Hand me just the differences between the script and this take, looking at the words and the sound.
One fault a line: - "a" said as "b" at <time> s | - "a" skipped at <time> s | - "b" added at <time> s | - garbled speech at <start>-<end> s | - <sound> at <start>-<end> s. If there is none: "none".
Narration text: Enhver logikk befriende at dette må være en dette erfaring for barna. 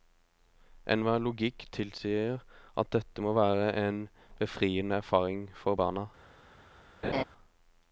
- "befriende" said as "tilsier" at 1.8 s
- "dette" said as "befriende" at 4.4 s
- laugh at 7.0-7.2 s